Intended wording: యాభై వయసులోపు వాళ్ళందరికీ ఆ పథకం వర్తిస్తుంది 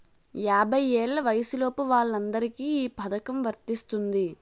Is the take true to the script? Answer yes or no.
no